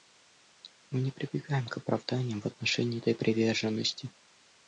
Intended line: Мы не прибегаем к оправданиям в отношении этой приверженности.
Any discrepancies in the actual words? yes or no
no